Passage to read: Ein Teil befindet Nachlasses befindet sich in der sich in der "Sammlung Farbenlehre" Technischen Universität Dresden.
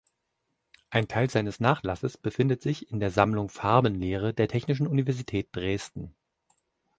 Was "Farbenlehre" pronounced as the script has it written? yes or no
no